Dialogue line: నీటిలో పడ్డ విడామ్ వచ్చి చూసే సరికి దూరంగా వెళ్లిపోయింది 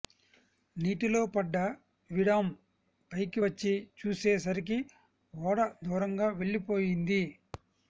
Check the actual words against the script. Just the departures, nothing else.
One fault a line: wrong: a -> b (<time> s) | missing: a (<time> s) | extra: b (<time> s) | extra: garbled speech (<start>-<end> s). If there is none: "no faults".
extra: పైకి (3.1 s)
extra: ఓడ (5.3 s)